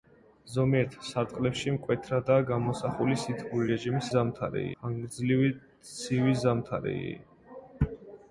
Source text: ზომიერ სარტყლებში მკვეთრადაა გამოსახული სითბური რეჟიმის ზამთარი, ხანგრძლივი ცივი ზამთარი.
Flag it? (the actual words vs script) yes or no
no